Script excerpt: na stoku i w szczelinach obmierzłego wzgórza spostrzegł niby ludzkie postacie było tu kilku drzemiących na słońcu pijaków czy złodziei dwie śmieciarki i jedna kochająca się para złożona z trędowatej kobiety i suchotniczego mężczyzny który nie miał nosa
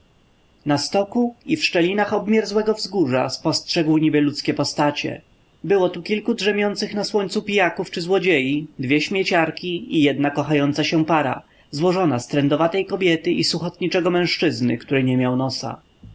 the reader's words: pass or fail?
pass